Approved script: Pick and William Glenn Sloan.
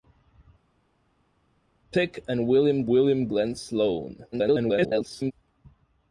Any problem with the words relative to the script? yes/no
yes